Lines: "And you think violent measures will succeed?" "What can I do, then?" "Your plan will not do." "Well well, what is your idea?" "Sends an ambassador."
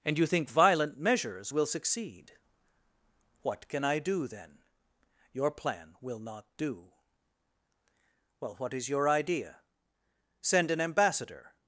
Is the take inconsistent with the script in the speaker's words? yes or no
yes